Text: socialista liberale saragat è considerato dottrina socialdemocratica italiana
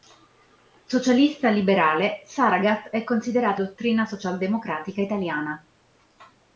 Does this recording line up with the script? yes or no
yes